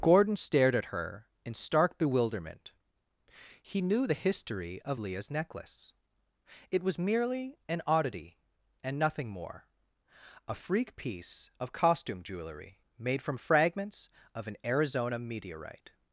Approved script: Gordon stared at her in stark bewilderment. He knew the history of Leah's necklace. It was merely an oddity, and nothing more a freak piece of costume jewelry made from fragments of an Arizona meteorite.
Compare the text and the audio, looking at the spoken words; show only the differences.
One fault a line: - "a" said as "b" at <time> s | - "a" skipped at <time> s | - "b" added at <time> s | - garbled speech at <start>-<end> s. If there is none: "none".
none